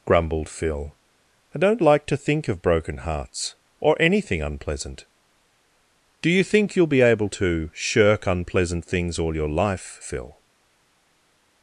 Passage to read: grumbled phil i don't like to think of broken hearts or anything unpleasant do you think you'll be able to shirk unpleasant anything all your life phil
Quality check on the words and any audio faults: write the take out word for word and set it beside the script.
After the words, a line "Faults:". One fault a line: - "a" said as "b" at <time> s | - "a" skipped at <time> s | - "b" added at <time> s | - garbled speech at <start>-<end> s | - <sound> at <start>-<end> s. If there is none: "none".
grumbled phil i don't like to think of broken hearts or anything unpleasant do you think you'll be able to shirk unpleasant things all your life phil
Faults:
- "anything" said as "things" at 8.8 s